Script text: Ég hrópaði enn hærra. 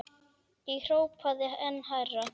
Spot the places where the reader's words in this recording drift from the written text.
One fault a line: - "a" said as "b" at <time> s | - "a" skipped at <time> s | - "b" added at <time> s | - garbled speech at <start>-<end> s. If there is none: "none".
none